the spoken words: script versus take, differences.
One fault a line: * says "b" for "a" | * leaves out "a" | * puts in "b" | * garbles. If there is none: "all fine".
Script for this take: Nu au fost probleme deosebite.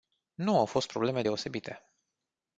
all fine